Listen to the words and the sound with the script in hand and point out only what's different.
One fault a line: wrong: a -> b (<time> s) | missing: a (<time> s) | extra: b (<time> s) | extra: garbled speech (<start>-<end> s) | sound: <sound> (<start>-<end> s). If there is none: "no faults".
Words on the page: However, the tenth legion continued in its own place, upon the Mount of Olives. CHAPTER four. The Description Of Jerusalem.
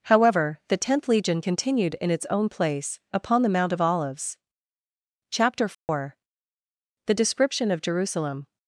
sound: dropout (5.7-5.9 s)